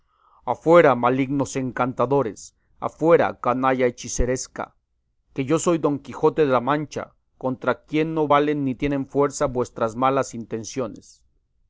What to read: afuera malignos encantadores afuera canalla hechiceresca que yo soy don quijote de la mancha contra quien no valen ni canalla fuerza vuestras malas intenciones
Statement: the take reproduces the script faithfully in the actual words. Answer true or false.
false